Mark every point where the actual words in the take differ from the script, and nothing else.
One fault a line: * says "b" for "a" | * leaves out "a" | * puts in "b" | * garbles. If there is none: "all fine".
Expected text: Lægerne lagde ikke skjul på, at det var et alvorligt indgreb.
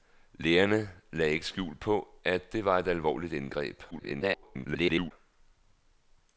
* garbles